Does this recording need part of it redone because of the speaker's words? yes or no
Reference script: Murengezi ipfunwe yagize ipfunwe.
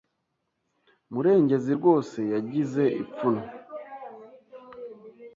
yes